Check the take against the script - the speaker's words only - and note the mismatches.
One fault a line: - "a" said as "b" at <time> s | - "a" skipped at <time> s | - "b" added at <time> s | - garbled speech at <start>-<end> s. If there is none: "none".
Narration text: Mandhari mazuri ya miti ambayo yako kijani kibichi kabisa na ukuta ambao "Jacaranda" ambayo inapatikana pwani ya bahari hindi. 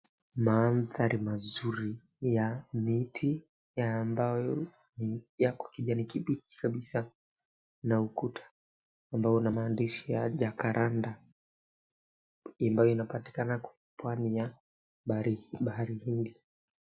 - "una maandishi ya" added at 9.3 s